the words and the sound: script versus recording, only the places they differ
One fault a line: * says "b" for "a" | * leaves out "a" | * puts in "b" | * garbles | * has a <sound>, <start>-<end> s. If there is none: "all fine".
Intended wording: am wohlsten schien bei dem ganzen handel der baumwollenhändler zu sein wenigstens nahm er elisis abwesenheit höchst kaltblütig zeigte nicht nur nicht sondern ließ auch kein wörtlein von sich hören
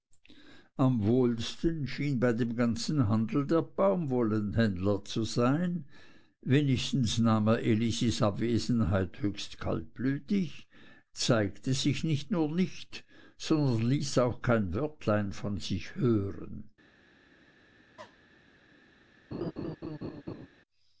* puts in "sich"
* has a cough, 18.0-18.2 s
* has a laugh, 19.3-20.5 s